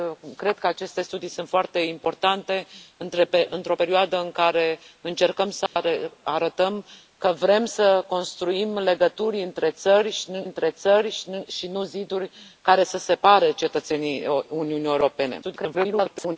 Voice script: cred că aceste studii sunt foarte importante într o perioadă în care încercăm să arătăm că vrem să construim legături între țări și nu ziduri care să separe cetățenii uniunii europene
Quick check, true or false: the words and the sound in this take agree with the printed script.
false